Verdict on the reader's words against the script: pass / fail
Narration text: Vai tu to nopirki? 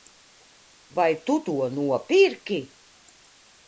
pass